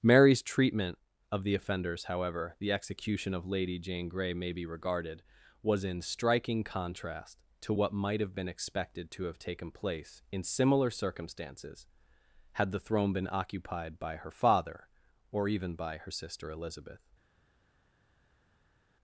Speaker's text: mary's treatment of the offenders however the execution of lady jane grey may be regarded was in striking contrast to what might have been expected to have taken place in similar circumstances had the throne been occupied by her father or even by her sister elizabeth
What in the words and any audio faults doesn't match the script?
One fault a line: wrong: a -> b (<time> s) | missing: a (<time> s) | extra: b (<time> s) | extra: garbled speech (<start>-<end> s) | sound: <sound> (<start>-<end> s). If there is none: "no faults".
no faults